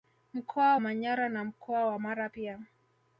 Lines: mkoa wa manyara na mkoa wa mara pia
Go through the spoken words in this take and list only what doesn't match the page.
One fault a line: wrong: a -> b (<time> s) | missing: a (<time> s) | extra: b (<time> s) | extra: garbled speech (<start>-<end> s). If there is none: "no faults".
missing: wa (0.8 s)